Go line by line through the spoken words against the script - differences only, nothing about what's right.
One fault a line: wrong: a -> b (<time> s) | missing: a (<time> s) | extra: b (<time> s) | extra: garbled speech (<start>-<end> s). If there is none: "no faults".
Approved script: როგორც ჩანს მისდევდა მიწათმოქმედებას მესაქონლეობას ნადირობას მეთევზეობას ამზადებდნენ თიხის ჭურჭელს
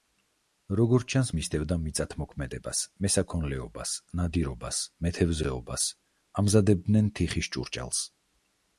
no faults